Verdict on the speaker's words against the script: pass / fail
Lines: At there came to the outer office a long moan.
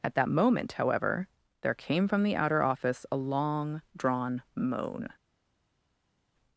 fail